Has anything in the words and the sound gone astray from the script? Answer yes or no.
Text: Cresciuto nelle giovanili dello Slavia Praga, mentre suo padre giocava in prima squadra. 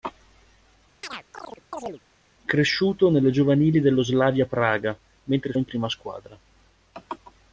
yes